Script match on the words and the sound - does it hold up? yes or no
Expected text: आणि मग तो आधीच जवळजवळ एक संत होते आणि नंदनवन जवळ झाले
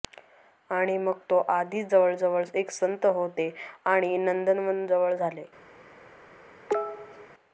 no